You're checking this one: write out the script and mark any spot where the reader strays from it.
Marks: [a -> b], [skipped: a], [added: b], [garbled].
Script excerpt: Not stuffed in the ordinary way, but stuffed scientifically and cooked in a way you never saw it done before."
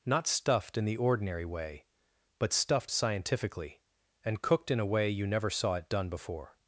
Not stuffed in the ordinary way, but stuffed scientifically and cooked in a way you never saw it done before."